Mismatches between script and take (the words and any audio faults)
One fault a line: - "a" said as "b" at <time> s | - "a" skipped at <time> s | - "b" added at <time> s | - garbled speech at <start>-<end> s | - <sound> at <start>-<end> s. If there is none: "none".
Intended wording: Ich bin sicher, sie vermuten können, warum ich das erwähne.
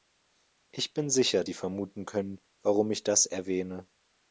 none